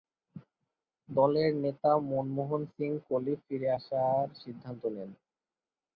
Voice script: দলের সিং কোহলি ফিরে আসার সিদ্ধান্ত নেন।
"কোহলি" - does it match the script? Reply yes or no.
yes